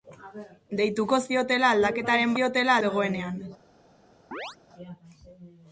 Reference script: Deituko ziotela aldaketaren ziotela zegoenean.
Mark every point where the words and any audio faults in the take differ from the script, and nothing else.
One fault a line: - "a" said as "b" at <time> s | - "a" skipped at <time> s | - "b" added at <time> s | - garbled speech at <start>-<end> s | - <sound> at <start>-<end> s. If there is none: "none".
- chirp at 4.3-4.6 s